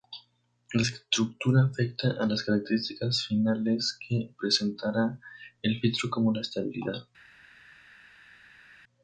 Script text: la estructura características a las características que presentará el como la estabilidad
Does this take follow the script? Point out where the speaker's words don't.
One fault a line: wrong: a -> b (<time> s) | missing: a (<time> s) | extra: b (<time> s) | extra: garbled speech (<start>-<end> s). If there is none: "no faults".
wrong: características -> afecta (1.6 s)
extra: finales (3.3 s)
extra: filtro (5.8 s)